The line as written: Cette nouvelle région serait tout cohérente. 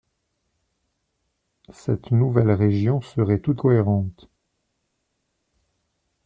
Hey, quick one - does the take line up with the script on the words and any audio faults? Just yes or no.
yes